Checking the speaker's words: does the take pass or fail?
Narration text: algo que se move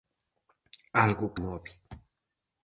fail